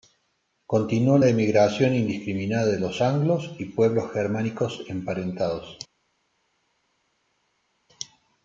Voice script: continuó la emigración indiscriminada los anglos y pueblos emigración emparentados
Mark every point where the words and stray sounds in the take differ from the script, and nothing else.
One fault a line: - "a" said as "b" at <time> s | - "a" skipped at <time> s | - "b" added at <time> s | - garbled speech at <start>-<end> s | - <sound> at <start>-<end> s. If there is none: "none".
- "de" added at 2.7 s
- "emigración" said as "germánicos" at 4.1 s